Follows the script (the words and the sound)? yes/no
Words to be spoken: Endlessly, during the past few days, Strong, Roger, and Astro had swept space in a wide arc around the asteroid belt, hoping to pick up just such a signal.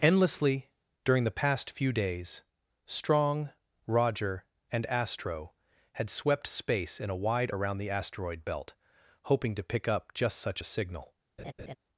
no